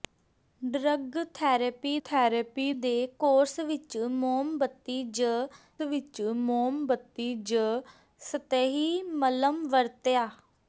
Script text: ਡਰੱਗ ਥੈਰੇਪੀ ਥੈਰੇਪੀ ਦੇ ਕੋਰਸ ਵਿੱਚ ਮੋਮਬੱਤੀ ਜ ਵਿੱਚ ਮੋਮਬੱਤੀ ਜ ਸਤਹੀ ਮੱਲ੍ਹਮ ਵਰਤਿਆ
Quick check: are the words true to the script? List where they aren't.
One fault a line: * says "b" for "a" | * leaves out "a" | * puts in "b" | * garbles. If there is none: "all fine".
all fine